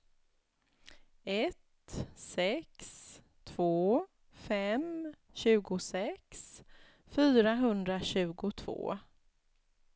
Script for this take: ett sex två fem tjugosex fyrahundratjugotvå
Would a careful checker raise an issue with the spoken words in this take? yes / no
no